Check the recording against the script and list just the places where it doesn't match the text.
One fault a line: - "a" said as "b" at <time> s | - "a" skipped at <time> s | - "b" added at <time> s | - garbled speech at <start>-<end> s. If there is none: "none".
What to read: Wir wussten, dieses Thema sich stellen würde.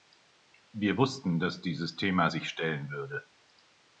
- "dass" added at 1.4 s